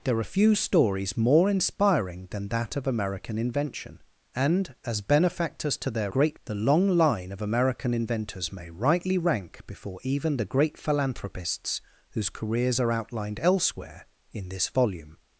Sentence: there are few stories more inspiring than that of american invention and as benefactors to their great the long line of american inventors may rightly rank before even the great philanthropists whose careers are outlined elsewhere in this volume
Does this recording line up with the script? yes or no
yes